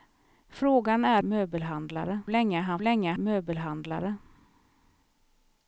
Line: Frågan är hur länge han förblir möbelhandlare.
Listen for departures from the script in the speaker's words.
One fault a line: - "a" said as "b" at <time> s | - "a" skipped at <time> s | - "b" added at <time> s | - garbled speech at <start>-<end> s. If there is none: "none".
- "hur" said as "möbelhandlare" at 1.2 s
- "förblir" said as "länge" at 2.8 s